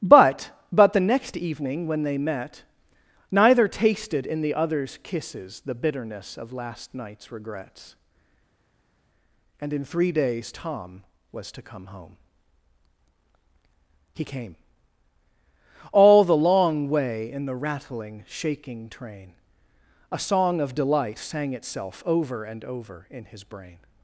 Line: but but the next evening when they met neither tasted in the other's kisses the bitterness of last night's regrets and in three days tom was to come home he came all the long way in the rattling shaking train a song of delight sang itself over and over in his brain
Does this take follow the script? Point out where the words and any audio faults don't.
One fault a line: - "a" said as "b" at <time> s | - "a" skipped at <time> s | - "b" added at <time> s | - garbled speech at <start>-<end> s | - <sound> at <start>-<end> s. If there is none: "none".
none